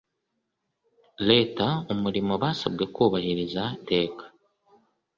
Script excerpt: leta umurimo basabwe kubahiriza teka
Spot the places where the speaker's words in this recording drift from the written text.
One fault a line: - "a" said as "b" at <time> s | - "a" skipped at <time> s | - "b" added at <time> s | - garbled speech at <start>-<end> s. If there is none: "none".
none